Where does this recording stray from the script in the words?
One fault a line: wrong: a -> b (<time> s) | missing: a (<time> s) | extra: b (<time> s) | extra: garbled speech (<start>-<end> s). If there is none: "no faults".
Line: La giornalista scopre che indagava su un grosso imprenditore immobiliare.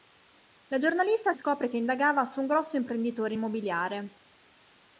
no faults